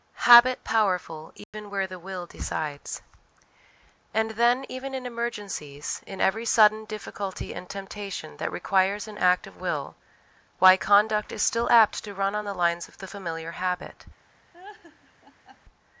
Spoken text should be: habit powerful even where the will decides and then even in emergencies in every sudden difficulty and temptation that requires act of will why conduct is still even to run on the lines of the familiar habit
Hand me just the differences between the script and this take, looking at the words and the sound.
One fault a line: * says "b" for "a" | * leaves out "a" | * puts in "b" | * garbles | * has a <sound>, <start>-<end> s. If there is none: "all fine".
* has a dropout, 1.4-1.5 s
* puts in "an"
* says "apt" for "even"
* has a laugh, 14.5-15.6 s